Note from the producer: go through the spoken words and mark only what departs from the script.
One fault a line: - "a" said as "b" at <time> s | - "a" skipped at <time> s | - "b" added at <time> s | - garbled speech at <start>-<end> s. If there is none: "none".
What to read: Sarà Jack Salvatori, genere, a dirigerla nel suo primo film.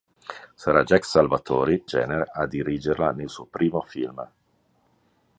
none